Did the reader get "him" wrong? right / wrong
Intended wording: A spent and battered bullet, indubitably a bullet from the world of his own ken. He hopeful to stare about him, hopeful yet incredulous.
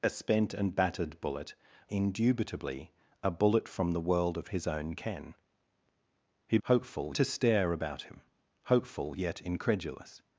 right